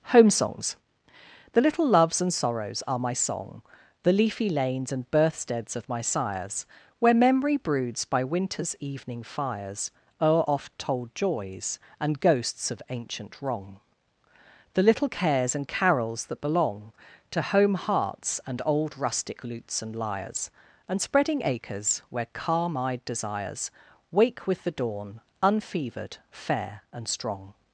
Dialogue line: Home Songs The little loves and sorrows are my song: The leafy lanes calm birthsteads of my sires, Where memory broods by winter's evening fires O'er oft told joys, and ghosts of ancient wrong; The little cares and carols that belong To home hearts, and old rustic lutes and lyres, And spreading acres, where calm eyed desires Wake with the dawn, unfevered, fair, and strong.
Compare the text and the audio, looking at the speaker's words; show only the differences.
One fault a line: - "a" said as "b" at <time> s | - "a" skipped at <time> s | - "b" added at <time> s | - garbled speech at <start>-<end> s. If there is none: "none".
- "calm" said as "and" at 4.9 s